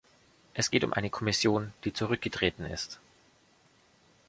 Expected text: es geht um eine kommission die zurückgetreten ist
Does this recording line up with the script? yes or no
yes